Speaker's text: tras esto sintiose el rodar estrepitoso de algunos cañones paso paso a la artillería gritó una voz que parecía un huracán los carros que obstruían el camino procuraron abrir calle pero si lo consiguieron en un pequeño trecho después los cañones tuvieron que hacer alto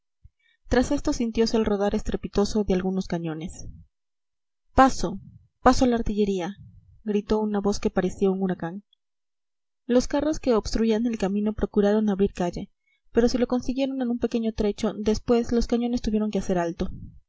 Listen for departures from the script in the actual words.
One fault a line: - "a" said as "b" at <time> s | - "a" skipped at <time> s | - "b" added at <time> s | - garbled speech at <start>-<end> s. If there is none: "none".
none